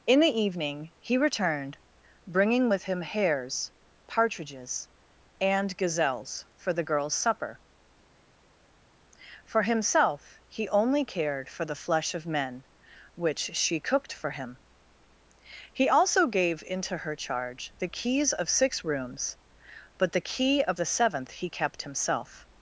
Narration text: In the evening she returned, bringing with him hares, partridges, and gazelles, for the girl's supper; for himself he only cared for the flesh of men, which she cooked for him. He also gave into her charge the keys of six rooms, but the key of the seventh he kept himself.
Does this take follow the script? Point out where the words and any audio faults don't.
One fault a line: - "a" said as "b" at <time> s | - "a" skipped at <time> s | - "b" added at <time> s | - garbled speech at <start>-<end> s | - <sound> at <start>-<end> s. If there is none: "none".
- "she" said as "he" at 1.0 s